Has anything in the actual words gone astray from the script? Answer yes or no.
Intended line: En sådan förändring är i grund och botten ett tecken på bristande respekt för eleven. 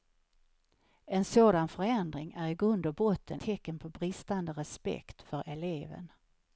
yes